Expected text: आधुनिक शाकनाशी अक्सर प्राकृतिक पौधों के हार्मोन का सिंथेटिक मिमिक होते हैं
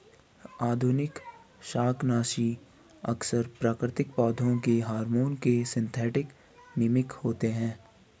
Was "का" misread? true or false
true